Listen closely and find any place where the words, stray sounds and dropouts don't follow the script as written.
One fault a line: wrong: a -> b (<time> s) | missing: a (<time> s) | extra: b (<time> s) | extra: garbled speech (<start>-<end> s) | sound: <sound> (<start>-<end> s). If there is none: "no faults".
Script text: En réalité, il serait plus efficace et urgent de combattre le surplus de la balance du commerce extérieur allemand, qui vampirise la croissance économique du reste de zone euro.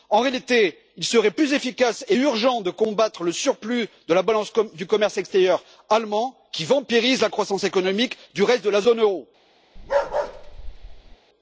extra: la (8.7 s)
sound: bark (9.8-11.2 s)